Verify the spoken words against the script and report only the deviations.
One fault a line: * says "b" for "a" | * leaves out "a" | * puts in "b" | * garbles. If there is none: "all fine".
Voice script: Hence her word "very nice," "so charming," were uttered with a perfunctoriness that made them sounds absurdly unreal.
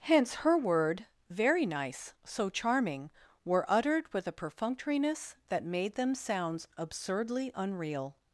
all fine